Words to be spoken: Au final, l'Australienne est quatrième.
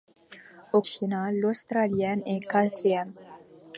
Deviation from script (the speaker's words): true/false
false